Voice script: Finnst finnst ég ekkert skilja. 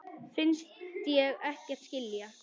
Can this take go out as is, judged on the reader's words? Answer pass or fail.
fail